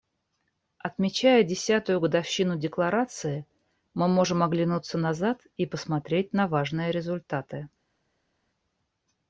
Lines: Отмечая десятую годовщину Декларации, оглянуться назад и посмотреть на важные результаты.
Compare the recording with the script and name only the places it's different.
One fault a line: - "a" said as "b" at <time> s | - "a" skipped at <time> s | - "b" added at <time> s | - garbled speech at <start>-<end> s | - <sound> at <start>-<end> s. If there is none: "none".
- "мы можем" added at 3.9 s